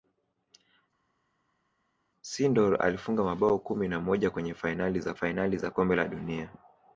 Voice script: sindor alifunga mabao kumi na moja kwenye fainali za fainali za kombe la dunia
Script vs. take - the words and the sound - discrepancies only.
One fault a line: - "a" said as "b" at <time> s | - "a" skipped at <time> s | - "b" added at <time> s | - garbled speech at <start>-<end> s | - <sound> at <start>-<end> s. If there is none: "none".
none